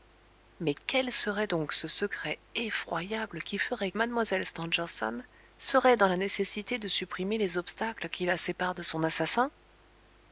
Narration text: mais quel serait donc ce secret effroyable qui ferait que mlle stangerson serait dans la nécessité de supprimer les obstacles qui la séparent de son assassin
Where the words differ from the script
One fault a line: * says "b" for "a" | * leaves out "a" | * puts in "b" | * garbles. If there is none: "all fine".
* leaves out "que"